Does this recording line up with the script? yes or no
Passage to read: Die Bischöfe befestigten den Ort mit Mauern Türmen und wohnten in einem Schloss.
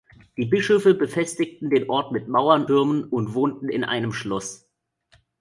yes